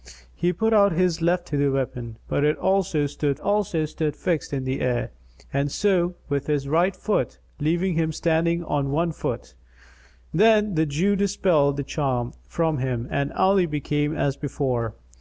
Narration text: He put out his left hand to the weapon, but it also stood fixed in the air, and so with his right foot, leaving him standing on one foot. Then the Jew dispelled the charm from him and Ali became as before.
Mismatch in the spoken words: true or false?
true